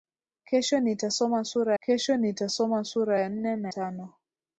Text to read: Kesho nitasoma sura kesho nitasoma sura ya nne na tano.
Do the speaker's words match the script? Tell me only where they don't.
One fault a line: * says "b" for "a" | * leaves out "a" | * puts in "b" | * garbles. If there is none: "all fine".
all fine